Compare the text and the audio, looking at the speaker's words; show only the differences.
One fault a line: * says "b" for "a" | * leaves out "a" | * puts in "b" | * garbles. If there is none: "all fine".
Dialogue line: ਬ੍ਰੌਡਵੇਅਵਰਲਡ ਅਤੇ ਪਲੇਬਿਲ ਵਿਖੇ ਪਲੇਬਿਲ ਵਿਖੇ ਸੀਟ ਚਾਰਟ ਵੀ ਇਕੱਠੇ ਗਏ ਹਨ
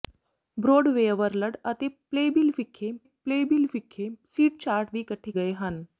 all fine